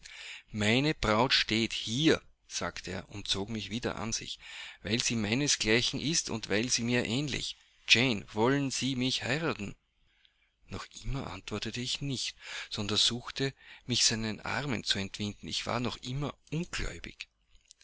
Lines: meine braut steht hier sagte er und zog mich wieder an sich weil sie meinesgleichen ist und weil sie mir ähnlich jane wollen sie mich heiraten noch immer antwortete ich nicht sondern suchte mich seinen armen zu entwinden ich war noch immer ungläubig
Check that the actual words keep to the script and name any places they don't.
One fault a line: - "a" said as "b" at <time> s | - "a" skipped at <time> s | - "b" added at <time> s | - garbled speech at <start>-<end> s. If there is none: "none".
none